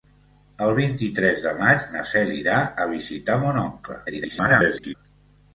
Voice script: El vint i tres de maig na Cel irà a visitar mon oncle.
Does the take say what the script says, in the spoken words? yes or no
no